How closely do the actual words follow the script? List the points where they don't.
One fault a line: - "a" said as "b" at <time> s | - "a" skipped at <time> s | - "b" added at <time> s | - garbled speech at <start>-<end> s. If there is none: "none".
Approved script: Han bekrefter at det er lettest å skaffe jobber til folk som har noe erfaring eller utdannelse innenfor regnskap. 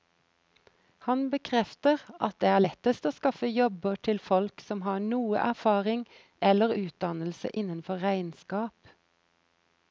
none